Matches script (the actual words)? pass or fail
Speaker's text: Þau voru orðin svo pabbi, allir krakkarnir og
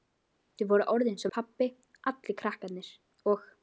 pass